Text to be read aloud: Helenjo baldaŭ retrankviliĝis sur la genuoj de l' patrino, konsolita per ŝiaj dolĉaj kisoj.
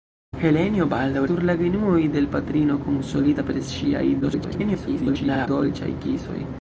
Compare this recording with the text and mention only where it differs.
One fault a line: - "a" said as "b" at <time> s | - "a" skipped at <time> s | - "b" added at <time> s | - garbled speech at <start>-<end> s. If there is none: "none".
- "retrankviliĝis" skipped at 1.2 s
- garbled speech at 4.2-5.5 s